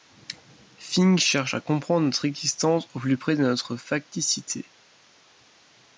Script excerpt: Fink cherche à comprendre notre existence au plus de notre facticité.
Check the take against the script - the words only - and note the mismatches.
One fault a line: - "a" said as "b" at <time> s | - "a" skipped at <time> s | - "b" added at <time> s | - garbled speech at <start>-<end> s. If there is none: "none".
- "près" added at 3.2 s